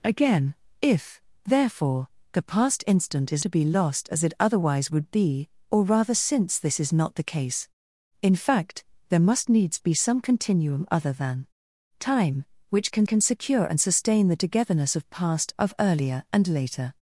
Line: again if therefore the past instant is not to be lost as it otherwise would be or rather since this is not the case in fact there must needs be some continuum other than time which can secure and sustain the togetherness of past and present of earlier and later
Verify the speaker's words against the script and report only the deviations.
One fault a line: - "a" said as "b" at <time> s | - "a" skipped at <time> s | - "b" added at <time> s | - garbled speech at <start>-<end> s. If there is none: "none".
- "not" skipped at 3.5 s
- "can" added at 13.1 s
- "and present" skipped at 15.5 s